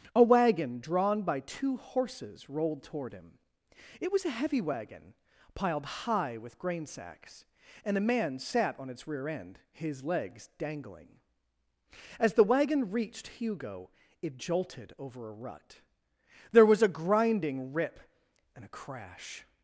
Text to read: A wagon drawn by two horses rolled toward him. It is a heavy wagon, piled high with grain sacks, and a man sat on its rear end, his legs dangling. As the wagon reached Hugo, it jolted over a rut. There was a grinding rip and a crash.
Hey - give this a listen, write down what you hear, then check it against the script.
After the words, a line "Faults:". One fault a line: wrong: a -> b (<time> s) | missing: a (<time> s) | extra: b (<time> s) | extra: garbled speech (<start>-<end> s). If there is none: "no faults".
A wagon drawn by two horses rolled toward him. It was a heavy wagon, piled high with grain sacks, and a man sat on its rear end, his legs dangling. As the wagon reached Hugo, it jolted over a rut. There was a grinding rip and a crash.
Faults:
wrong: is -> was (4.1 s)